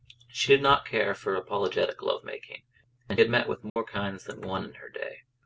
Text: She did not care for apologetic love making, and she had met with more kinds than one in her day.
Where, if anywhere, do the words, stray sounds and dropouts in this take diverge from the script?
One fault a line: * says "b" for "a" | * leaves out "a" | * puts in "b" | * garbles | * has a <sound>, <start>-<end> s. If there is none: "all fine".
* leaves out "she"
* has a dropout, 3.7-3.8 s